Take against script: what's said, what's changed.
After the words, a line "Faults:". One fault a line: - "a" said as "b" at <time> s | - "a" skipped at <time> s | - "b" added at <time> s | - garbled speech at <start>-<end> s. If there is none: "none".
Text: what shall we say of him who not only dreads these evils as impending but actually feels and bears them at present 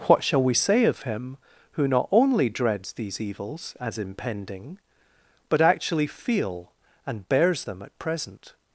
what shall we say of him who not only dreads these evils as impending but actually feel and bears them at present
Faults:
- "feels" said as "feel" at 6.1 s